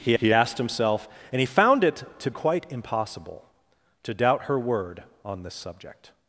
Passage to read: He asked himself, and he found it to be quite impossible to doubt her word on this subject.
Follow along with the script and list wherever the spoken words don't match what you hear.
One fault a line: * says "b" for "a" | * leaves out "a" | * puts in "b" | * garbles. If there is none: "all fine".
* puts in "he"
* leaves out "be"